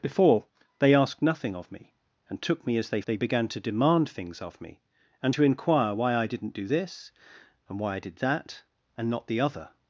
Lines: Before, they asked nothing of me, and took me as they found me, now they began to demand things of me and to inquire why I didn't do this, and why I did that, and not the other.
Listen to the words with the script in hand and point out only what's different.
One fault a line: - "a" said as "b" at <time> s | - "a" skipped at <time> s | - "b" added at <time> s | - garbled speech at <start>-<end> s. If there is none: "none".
- "found me now" skipped at 3.0 s